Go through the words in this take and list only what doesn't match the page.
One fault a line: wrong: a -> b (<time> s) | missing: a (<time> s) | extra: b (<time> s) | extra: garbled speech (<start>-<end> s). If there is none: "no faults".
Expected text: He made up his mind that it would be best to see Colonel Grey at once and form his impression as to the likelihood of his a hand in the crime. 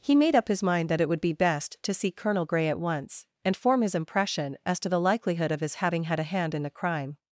extra: having had (5.8 s)